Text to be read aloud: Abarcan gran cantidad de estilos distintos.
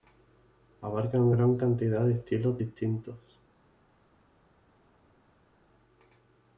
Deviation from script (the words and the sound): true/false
false